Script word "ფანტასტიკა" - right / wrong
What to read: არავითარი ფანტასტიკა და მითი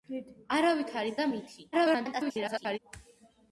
wrong